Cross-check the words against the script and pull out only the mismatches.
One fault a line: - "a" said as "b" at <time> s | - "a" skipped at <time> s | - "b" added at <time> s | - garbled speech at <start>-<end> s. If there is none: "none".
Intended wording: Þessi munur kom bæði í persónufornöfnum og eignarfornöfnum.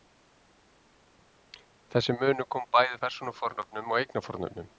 none